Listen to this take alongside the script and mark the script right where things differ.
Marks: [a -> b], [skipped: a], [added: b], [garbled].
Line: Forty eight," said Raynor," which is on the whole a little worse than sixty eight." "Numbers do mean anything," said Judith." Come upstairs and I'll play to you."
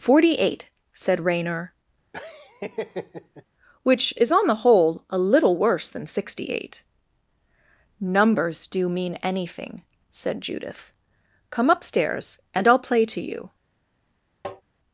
Forty eight," said Raynor," which is on the whole a little worse than sixty eight." "Numbers do mean anything," said Judith." Come upstairs and I'll play to you."